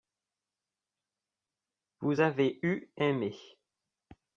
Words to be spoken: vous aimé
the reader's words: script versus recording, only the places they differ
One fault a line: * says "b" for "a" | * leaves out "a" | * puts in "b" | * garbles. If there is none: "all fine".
* puts in "avez eu"